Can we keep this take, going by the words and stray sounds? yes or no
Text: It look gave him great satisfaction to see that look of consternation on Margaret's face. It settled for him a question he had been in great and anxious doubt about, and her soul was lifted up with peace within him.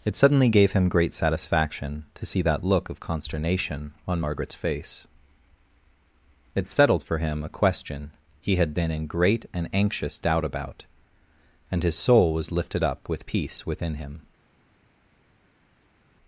no